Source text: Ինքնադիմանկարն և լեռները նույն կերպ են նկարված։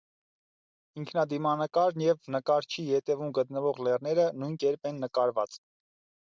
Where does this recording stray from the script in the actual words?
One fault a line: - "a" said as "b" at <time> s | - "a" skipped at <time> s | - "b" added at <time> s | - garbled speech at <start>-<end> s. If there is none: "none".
- "նկարչի ետևում գտնվող" added at 2.4 s